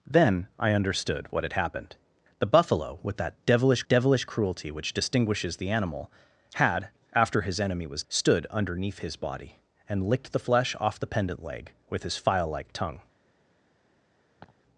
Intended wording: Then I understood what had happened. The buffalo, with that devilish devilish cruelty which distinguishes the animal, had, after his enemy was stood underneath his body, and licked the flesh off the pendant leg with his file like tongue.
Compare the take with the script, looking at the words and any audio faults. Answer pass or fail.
fail